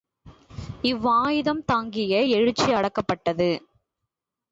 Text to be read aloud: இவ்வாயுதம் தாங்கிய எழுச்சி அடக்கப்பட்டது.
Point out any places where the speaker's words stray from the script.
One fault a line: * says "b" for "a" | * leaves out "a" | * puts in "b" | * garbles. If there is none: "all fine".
all fine